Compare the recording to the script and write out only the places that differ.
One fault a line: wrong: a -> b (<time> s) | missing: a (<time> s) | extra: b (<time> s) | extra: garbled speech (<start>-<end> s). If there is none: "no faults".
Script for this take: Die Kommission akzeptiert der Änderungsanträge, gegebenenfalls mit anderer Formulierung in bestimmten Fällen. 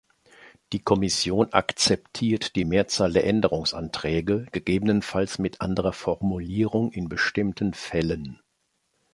extra: die Mehrzahl (2.5 s)